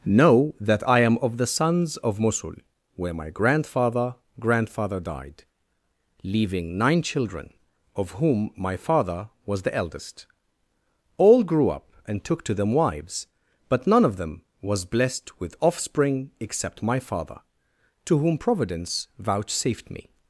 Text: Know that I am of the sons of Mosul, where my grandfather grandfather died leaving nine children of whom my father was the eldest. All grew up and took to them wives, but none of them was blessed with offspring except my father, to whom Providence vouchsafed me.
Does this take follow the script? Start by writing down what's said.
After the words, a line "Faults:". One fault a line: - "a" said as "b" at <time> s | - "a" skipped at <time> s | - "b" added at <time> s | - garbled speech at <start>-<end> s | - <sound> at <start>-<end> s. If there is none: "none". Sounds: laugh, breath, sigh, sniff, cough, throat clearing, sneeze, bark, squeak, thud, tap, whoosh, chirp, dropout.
Know that I am of the sons of Mosul, where my grandfather grandfather died leaving nine children of whom my father was the eldest. All grew up and took to them wives, but none of them was blessed with offspring except my father, to whom Providence vouchsafed me.
Faults:
none